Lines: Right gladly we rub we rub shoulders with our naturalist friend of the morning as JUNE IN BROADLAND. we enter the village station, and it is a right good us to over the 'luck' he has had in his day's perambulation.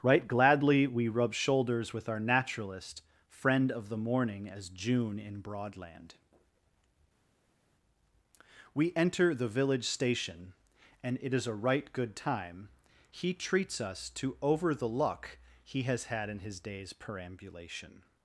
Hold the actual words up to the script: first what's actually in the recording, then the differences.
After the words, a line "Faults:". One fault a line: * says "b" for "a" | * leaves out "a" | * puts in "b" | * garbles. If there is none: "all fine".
Right gladly we rub shoulders with our naturalist friend of the morning as JUNE IN BROADLAND. we enter the village station, and it is a right good time he treats us to over the 'luck' he has had in his day's perambulation.
Faults:
* leaves out "we rub"
* puts in "time he treats"